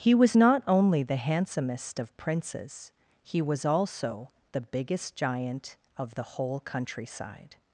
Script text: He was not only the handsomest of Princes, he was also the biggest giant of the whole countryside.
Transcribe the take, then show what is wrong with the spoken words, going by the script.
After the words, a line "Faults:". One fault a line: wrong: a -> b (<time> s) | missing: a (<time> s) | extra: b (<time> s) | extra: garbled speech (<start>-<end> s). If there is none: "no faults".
He was not only the handsomest of Princes, he was also the biggest giant of the whole countryside.
Faults:
no faults